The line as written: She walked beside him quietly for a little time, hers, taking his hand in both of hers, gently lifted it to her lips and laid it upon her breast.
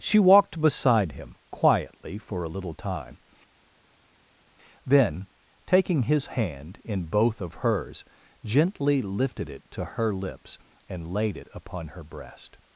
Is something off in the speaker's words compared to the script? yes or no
yes